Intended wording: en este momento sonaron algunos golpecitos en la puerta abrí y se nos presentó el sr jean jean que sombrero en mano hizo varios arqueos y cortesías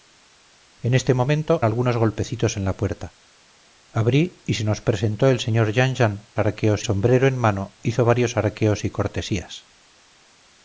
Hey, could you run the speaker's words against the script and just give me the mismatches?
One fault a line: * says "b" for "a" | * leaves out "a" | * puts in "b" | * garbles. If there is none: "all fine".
* leaves out "sonaron"
* says "arqueos" for "que"